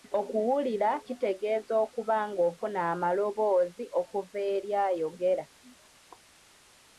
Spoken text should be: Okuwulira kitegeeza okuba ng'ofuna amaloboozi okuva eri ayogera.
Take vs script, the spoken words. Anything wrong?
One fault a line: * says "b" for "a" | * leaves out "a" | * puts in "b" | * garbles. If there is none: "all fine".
all fine